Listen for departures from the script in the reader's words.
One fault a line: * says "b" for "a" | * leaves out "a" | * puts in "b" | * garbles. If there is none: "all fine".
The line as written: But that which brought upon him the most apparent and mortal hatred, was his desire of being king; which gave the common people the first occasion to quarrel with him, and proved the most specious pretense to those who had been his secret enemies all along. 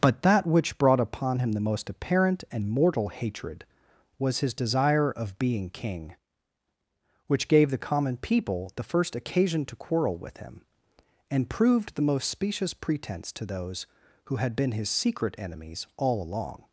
all fine